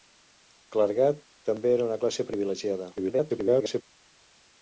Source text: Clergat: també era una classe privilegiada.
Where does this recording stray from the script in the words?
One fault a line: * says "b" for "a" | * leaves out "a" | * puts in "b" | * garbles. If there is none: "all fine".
* garbles